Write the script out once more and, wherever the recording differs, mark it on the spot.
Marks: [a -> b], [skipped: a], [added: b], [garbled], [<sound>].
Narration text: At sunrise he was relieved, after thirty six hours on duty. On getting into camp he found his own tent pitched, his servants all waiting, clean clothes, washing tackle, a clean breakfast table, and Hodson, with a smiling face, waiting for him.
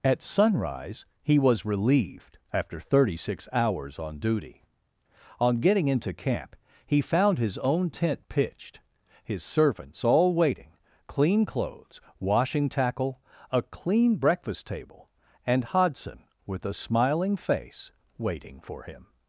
At sunrise he was relieved, after thirty six hours on duty. On getting into camp he found his own tent pitched, his servants all waiting, clean clothes, washing tackle, a clean breakfast table, and Hodson, with a smiling face, waiting for him.